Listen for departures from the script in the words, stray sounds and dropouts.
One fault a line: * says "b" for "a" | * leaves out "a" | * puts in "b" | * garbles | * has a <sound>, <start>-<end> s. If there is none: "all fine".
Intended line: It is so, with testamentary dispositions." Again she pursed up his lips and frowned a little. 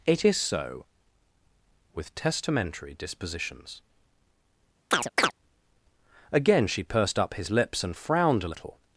* has a chirp, 4.9-5.3 s